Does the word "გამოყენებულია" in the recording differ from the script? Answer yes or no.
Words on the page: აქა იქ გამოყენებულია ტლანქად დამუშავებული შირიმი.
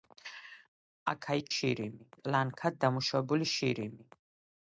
yes